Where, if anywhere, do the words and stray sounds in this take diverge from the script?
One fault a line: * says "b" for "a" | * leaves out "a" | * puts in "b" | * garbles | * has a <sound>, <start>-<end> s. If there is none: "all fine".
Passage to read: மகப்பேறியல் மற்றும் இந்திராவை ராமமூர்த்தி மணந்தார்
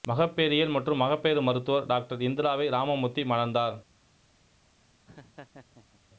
* puts in "மகப்பேறு மருத்துவர் டாக்டர்"
* has a laugh, 5.1-6.0 s